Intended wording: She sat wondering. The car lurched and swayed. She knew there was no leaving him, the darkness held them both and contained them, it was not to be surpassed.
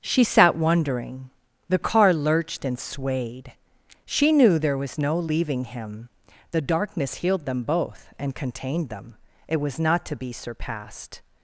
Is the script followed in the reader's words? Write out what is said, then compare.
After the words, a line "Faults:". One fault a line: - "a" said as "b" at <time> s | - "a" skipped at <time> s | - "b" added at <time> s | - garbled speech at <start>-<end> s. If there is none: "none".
She sat wondering. The car lurched and swayed. She knew there was no leaving him, the darkness healed them both and contained them, it was not to be surpassed.
Faults:
- "held" said as "healed" at 7.2 s